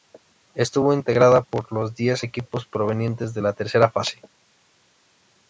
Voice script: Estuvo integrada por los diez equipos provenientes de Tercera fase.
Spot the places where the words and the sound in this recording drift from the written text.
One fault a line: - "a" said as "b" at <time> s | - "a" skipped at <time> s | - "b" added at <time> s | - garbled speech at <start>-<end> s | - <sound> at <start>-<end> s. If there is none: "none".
- "la" added at 3.4 s